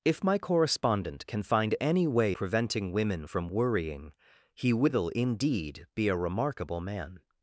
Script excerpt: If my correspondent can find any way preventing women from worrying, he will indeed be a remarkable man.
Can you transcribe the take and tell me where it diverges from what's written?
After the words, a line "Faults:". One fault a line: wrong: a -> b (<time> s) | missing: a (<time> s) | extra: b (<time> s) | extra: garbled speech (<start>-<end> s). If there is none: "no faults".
If my correspondent can find any way preventing women from worrying, he will indeed be a remarkable man.
Faults:
no faults